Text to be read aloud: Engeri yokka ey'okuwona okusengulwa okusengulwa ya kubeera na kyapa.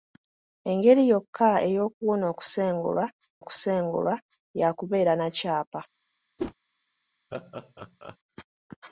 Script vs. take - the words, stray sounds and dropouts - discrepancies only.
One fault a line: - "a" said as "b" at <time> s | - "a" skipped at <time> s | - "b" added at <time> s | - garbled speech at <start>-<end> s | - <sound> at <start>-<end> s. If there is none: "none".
- whoosh at 6.4-6.5 s
- laugh at 7.3-8.2 s